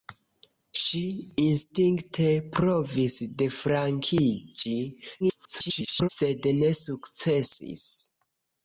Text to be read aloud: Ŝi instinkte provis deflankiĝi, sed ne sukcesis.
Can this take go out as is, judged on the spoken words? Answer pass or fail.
fail